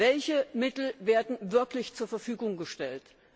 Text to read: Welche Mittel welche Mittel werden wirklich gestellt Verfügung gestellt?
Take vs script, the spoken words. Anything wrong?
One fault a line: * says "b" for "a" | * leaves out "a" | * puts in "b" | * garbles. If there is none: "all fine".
* leaves out "welche Mittel"
* says "zur" for "gestellt"